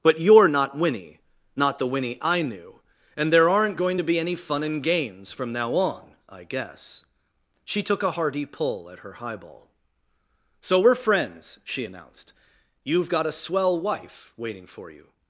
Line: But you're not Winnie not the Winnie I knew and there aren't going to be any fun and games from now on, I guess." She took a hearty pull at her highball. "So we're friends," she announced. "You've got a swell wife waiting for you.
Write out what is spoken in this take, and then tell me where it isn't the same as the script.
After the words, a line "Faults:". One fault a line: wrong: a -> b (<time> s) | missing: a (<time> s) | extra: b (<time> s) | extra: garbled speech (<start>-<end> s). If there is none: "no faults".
But you're not Winnie not the Winnie I knew and there aren't going to be any fun and games from now on, I guess." She took a hearty pull at her highball. "So we're friends," she announced. "You've got a swell wife waiting for you.
Faults:
no faults